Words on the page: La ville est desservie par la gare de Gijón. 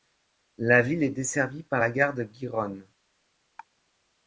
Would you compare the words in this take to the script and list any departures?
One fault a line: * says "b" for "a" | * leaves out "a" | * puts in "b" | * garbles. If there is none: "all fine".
all fine